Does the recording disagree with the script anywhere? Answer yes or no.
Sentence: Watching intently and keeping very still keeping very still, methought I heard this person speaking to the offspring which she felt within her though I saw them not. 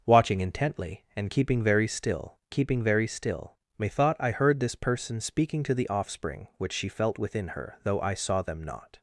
no